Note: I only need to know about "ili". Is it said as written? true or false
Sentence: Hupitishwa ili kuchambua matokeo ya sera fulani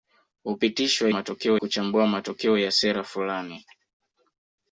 false